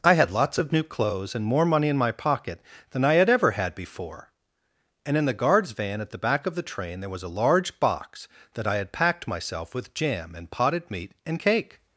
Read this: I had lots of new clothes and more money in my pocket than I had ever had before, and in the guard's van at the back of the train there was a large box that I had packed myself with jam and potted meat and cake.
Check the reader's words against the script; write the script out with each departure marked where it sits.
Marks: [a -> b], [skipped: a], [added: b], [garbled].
I had lots of new clothes and more money in my pocket than I had ever had before, and in the guard's van at the back of the train there was a large box that I had packed myself with jam and potted meat and cake.